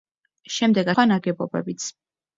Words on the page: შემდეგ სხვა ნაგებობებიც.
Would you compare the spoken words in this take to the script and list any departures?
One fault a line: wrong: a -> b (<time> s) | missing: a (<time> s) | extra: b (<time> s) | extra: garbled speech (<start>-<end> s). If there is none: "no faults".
no faults